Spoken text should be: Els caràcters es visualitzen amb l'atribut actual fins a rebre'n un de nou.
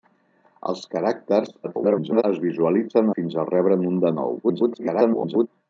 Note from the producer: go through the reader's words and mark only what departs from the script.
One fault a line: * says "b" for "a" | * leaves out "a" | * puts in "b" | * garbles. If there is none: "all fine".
* garbles
* leaves out "amb l'atribut actual"
* garbles